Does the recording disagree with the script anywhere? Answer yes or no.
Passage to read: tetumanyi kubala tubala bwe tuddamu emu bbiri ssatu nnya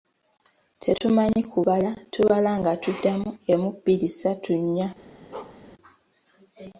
yes